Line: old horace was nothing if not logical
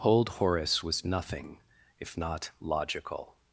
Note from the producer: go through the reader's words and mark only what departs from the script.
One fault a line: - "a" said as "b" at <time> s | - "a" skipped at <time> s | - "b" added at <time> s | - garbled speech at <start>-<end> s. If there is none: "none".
none